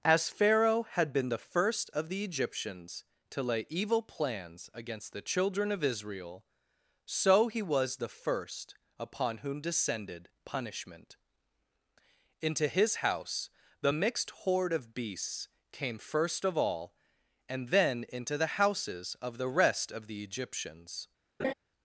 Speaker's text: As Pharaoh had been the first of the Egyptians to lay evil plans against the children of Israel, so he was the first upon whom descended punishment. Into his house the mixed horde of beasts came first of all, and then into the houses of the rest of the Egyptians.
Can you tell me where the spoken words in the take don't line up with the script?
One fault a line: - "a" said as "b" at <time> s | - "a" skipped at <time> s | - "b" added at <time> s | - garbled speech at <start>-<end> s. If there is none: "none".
none